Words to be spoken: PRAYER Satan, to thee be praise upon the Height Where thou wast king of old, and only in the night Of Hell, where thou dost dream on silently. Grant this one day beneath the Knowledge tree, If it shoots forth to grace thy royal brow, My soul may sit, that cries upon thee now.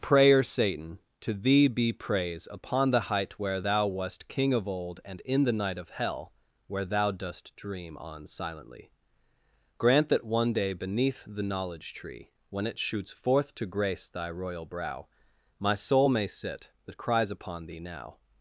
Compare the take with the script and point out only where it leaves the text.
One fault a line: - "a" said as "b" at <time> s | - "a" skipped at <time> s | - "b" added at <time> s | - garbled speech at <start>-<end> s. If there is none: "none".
- "only" skipped at 5.2 s
- "this" said as "that" at 10.1 s
- "If" said as "When" at 12.5 s